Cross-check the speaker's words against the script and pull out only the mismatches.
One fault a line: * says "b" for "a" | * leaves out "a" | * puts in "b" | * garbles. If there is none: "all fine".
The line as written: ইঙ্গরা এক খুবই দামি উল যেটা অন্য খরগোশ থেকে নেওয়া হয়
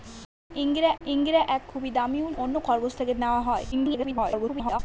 * puts in "ইঙ্গরা"
* leaves out "যেটা"
* garbles